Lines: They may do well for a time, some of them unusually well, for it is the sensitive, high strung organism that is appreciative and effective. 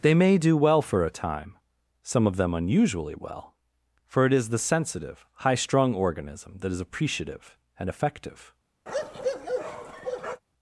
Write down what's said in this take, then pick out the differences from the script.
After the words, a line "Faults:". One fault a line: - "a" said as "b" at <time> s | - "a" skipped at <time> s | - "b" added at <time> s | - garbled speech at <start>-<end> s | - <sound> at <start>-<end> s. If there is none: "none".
They may do well for a time, some of them unusually well, for it is the sensitive, high strung organism that is appreciative and effective.
Faults:
- bark at 8.9-10.4 s